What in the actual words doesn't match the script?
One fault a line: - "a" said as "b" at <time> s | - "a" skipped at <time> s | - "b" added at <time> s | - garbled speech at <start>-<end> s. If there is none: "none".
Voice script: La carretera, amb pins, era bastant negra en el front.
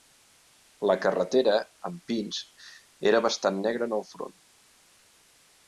none